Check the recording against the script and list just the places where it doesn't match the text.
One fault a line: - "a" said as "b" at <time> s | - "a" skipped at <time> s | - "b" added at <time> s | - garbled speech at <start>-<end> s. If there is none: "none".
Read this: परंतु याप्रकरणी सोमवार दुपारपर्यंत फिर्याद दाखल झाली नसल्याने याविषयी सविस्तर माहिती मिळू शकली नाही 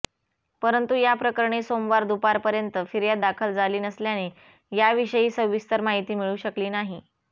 none